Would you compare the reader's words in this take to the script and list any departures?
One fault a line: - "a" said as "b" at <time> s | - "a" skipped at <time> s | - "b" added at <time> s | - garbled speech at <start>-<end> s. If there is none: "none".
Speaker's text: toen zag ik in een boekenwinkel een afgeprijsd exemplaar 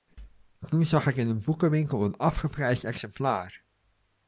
none